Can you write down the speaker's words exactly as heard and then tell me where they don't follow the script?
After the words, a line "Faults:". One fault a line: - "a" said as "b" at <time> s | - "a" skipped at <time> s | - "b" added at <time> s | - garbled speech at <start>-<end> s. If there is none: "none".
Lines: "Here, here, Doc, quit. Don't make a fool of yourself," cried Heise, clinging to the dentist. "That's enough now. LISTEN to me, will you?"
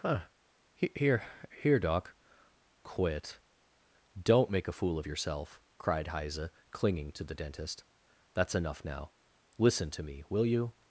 huh "Here, here, Doc, quit. Don't make a fool of yourself," cried Heise, clinging to the dentist. "That's enough now. LISTEN to me, will you?"
Faults:
- "huh" added at 0.0 s